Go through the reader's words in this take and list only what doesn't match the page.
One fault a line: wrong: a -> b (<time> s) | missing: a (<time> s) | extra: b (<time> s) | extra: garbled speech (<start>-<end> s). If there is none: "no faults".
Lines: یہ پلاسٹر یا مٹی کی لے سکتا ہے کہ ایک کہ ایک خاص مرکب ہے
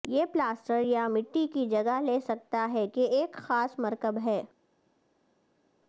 extra: جگہ (1.7 s)
missing: کہ ایک (3.3 s)